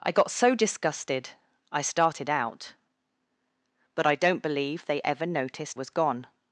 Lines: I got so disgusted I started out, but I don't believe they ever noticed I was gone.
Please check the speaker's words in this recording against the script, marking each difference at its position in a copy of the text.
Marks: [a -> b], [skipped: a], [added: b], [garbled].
I got so disgusted I started out, but I don't believe they ever noticed [skipped: I] was gone.